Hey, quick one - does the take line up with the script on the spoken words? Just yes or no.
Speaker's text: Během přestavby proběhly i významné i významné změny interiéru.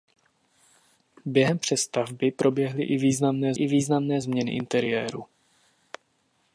yes